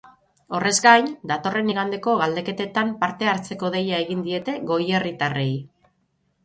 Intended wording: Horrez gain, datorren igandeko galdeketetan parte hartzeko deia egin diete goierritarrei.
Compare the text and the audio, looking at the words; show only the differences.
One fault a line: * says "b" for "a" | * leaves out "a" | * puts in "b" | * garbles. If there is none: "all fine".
all fine